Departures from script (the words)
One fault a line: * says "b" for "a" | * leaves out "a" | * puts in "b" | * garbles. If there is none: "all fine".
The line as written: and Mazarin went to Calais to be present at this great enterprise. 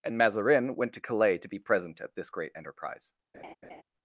all fine